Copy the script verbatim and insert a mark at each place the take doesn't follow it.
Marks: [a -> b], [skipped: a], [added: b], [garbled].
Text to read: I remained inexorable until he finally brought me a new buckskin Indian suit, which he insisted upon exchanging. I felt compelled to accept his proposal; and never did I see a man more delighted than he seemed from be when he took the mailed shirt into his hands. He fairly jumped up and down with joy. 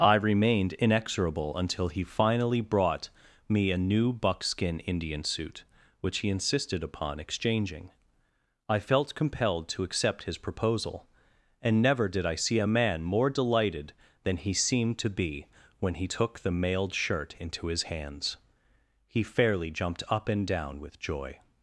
I remained inexorable until he finally brought me a new buckskin Indian suit, which he insisted upon exchanging. I felt compelled to accept his proposal; and never did I see a man more delighted than he seemed [from -> to] be when he took the mailed shirt into his hands. He fairly jumped up and down with joy.